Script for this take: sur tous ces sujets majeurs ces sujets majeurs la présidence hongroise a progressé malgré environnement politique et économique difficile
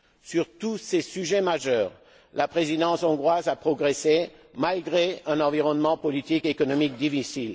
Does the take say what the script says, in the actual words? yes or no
no